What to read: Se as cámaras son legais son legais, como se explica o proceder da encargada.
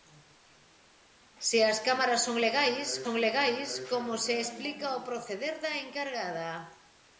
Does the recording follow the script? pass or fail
pass